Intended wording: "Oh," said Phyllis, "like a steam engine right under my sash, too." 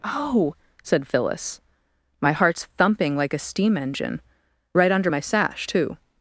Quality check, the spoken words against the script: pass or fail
fail